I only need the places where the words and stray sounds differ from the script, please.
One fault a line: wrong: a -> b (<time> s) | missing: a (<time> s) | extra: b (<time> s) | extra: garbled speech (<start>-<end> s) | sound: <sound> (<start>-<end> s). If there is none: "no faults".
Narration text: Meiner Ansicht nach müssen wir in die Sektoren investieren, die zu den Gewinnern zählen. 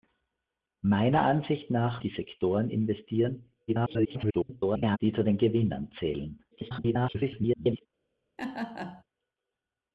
missing: müssen wir in (2.0 s)
extra: garbled speech (3.7-5.0 s)
extra: garbled speech (6.5-7.9 s)
sound: laugh (8.4-9.0 s)